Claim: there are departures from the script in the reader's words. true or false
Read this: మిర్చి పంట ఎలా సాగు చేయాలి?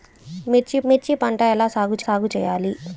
true